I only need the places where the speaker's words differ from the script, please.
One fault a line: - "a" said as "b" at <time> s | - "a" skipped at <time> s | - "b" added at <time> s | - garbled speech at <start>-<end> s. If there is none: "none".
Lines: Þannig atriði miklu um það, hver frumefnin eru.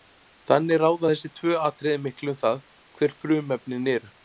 - "ráða þessi tvö" added at 0.8 s